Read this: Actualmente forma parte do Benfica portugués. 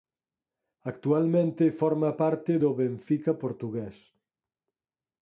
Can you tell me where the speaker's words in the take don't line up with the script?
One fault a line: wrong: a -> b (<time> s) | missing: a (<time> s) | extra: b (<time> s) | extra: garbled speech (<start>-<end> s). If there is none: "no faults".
no faults